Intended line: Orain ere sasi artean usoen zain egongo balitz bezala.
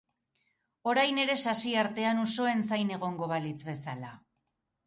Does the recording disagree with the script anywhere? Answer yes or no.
no